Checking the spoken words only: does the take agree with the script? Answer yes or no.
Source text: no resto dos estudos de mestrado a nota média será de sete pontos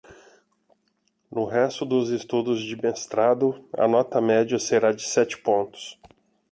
yes